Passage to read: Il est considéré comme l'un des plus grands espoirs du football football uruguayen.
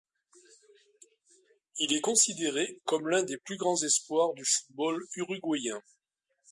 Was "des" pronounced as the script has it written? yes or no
yes